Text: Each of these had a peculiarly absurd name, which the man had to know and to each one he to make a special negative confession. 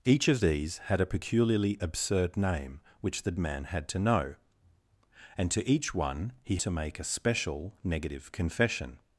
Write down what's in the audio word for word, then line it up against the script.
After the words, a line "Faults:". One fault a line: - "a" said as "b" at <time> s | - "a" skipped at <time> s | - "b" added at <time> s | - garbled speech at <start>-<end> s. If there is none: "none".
Each of these had a peculiarly absurd name, which the man had to know and to each one he to make a special negative confession.
Faults:
none